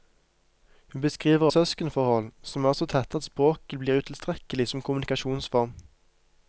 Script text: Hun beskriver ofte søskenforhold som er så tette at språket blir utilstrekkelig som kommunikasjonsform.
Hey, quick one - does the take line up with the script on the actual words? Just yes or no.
no